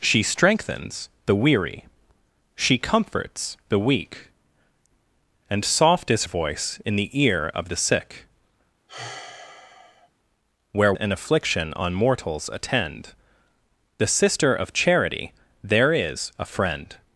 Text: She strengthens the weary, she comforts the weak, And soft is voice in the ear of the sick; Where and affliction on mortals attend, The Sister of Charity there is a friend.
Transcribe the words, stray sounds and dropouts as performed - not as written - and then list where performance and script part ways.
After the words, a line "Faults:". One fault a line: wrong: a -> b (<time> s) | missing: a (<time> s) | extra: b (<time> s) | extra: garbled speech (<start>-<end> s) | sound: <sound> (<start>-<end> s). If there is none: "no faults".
She strengthens the weary, she comforts the weak, And soft is voice in the ear of the sick; Where and affliction on mortals attend, The Sister of Charity there is a friend.
Faults:
sound: sigh (8.9-10.1 s)